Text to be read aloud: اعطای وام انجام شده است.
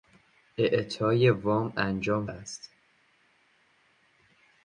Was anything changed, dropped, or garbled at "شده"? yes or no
yes